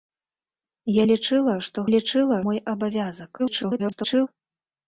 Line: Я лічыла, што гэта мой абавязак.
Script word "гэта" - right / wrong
wrong